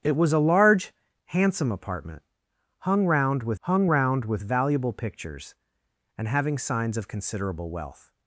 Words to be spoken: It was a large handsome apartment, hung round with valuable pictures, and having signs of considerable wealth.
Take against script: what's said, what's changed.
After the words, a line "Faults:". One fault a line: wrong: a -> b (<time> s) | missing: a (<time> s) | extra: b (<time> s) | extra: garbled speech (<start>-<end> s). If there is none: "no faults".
It was a large handsome apartment, hung round with hung round with valuable pictures, and having signs of considerable wealth.
Faults:
extra: hung round with (3.6 s)